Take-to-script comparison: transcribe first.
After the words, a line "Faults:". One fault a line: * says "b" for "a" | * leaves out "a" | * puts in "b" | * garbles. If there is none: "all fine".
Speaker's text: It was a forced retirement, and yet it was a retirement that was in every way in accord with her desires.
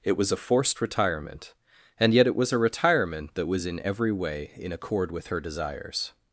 It was a forced retirement, and yet it was a retirement that was in every way in accord with her desires.
Faults:
all fine